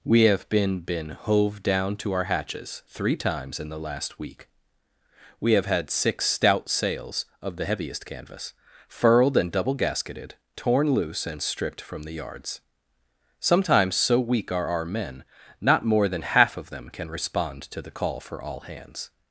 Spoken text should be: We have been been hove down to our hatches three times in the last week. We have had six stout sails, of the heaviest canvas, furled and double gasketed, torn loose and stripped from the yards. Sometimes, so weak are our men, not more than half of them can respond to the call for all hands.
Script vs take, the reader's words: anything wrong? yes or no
no